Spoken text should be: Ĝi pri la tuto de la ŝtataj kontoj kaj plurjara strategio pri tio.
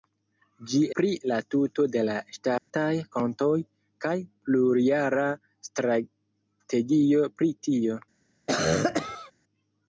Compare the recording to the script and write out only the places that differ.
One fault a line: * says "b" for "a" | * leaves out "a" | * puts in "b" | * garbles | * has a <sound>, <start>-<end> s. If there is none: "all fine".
* has a dropout, 2.6-2.7 s
* has a cough, 8.5-9.3 s